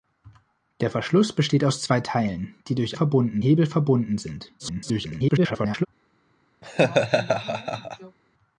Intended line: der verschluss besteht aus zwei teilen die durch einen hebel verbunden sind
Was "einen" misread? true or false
true